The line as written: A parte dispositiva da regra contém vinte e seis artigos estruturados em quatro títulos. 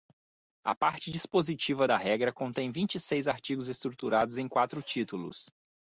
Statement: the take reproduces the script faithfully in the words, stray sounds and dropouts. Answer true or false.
true